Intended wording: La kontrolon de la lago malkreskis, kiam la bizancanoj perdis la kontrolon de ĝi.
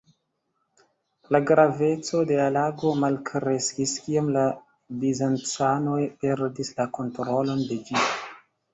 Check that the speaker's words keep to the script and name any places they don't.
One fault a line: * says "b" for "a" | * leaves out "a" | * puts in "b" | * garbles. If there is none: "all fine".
* says "graveco" for "kontrolon"